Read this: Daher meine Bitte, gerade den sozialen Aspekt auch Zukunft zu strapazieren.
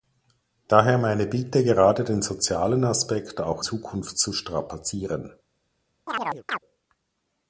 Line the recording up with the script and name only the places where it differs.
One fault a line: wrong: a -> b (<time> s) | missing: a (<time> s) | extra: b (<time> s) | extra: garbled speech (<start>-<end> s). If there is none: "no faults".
no faults